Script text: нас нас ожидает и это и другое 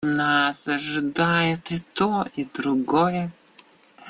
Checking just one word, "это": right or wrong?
wrong